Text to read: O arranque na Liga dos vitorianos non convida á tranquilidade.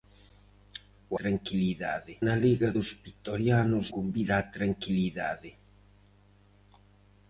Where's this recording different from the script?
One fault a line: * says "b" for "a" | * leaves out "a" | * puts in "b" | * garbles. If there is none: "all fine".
* says "tranquilidade" for "arranque"
* leaves out "non"